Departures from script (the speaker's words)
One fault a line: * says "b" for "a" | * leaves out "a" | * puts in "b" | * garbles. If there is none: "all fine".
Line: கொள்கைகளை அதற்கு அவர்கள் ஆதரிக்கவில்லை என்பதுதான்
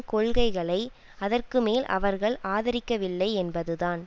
* puts in "மேல்"